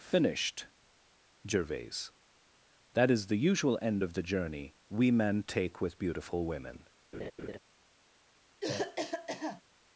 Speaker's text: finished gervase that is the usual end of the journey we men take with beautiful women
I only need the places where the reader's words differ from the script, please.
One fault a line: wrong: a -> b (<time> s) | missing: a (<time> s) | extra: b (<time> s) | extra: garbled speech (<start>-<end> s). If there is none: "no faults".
no faults